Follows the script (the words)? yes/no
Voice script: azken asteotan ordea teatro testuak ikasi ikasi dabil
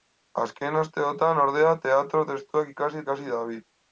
yes